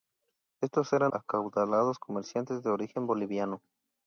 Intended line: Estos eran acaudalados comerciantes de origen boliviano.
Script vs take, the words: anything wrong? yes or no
no